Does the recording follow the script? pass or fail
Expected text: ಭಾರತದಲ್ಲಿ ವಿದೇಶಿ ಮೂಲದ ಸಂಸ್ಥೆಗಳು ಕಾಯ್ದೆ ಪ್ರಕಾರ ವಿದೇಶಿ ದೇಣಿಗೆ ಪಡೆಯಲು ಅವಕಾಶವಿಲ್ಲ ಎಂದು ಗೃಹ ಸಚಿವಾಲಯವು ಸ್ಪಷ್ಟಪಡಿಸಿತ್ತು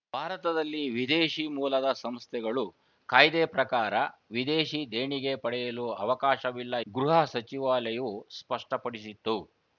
fail